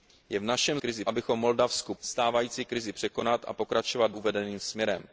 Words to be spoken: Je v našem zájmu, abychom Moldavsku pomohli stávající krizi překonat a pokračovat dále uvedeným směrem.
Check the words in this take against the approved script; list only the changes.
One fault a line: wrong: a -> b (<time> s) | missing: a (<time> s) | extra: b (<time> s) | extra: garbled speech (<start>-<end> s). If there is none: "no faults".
wrong: zájmu -> krizi (0.8 s)
missing: pomohli (1.9 s)
missing: dále (4.1 s)